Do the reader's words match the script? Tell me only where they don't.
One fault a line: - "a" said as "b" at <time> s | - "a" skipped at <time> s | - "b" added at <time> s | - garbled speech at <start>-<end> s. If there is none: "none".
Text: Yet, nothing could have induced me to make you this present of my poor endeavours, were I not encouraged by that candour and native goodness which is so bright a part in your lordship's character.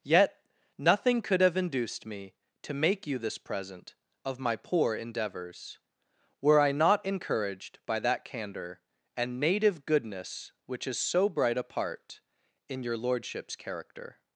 none